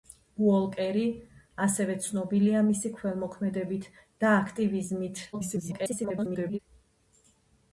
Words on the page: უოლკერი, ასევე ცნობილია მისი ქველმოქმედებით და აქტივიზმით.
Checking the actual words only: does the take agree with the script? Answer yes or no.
no